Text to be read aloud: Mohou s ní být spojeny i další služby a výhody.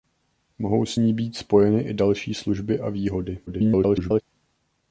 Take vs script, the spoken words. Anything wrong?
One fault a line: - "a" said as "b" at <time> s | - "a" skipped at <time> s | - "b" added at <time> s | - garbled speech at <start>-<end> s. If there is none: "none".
- garbled speech at 3.5-4.2 s